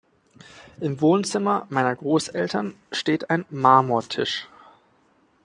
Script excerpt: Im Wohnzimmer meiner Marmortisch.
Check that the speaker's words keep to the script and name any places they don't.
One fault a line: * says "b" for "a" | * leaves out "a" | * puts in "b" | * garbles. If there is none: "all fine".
* puts in "Großeltern steht ein"